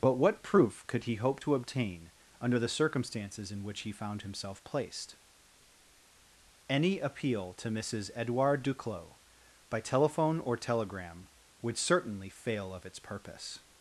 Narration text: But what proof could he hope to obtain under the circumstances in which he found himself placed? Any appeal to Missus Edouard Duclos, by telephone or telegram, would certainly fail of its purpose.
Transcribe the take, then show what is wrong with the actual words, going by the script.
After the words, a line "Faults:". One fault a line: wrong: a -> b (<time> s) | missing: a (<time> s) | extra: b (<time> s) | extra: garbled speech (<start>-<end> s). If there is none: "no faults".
But what proof could he hope to obtain under the circumstances in which he found himself placed? Any appeal to Missus Edouard Duclos, by telephone or telegram, would certainly fail of its purpose.
Faults:
no faults